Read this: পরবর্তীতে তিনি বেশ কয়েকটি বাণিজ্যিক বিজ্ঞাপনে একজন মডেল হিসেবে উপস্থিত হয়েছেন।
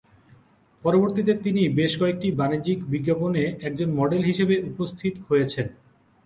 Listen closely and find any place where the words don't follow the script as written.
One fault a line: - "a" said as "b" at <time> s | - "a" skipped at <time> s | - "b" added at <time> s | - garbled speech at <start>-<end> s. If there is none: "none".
none